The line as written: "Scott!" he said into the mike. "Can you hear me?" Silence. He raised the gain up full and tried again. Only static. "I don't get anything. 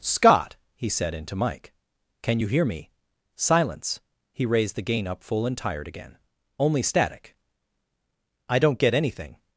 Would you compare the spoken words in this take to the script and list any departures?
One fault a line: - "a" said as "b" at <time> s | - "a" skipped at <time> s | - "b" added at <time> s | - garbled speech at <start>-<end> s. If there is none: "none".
- "the" skipped at 1.3 s
- "tried" said as "tired" at 5.6 s